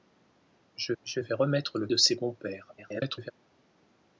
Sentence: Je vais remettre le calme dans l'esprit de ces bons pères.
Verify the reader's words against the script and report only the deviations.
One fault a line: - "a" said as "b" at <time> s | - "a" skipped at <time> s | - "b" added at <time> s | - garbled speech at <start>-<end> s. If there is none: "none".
- "je" added at 1.0 s
- "calme dans l'esprit" skipped at 1.9 s
- garbled speech at 2.8-3.3 s